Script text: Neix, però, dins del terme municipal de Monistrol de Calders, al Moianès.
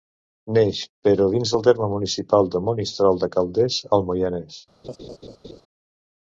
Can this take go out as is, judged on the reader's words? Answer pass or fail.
pass